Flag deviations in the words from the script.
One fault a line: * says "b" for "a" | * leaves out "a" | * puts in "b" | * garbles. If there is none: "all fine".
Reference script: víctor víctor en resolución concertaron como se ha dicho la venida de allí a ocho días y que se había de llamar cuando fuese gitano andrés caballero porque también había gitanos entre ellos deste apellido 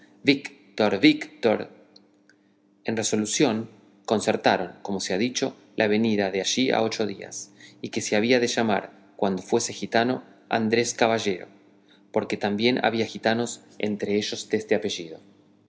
all fine